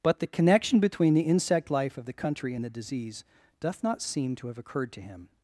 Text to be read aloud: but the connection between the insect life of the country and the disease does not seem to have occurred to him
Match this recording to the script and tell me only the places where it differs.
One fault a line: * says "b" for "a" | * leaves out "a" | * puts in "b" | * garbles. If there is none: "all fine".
* says "doth" for "does"